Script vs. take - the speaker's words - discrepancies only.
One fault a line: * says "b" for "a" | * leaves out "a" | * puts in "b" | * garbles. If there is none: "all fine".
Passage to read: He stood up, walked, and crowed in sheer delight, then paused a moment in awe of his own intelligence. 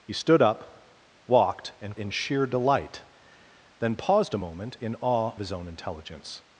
* leaves out "crowed"
* leaves out "of"